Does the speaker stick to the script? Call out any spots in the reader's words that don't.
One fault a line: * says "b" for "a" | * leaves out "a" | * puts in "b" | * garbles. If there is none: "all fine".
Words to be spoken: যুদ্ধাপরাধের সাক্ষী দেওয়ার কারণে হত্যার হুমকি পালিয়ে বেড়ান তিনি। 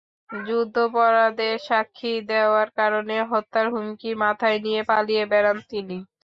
* puts in "মাথায় নিয়ে"